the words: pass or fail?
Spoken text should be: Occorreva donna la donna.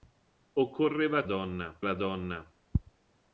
pass